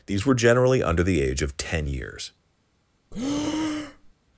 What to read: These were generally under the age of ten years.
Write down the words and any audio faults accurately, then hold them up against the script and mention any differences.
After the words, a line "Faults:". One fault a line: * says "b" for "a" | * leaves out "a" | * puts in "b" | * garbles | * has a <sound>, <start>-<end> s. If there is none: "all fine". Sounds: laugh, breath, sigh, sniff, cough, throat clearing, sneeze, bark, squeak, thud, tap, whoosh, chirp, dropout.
These were generally under the age of ten years.
Faults:
* has a breath, 3.1-4.1 s